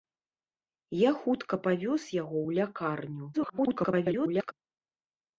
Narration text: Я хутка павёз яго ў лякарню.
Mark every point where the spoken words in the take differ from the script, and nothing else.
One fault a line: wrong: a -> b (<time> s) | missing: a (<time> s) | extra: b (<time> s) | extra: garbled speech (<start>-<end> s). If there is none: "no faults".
extra: garbled speech (3.3-4.5 s)